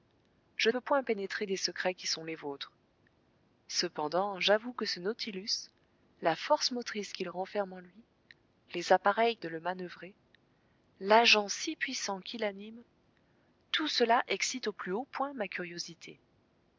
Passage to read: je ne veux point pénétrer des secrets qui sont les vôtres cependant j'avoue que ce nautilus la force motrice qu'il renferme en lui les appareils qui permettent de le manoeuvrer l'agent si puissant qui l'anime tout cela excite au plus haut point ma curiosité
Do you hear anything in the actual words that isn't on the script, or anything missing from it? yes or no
yes